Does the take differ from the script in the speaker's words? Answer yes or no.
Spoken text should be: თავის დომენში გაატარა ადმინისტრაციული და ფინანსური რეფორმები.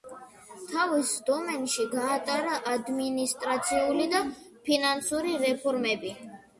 no